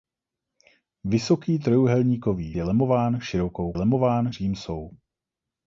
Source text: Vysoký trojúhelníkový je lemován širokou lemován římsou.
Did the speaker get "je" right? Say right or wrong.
right